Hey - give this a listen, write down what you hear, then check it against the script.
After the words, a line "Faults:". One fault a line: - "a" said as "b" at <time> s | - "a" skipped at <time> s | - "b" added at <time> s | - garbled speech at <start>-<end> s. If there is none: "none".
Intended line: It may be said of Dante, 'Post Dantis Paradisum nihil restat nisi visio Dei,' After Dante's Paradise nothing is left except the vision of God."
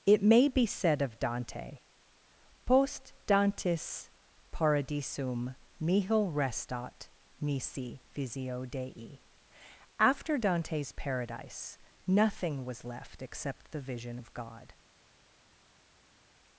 It may be said of Dante, 'Post Dantis Paradisum nihil restat nisi visio Dei,' After Dante's Paradise nothing was left except the vision of God."
Faults:
- "is" said as "was" at 12.7 s